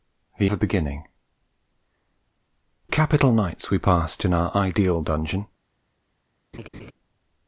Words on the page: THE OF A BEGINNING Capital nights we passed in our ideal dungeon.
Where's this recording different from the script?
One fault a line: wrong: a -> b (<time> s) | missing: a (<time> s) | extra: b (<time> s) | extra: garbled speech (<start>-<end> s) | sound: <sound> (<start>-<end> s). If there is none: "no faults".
sound: laugh (6.5-6.9 s)